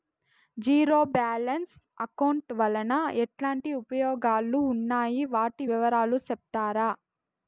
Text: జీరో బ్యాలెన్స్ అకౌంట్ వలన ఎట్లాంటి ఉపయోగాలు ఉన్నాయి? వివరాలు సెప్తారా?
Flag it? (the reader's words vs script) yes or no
yes